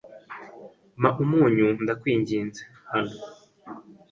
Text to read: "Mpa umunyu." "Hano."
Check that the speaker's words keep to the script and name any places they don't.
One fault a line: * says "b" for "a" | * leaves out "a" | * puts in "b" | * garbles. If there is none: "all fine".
* puts in "ndakwinginze"